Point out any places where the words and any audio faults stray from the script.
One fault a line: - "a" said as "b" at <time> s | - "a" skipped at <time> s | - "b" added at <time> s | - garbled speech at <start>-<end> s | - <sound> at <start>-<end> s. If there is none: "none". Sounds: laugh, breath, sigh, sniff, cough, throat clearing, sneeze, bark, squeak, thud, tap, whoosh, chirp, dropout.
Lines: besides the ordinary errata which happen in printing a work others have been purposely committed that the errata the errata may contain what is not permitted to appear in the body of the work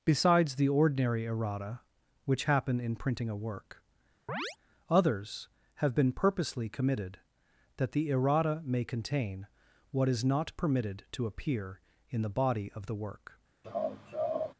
- chirp at 4.3-4.6 s
- "the errata" skipped at 8.6 s
- laugh at 13.6-14.5 s